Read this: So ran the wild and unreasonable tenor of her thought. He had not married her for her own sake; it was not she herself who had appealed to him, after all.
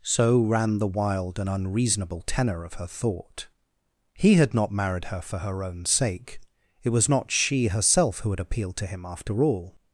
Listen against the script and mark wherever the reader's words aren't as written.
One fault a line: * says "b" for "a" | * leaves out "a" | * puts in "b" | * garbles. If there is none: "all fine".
all fine